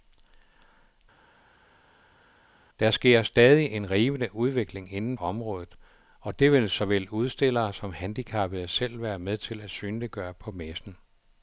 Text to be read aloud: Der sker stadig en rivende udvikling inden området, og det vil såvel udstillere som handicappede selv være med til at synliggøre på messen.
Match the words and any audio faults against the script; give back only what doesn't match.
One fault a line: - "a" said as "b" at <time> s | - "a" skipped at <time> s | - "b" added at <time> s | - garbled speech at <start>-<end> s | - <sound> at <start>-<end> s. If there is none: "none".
none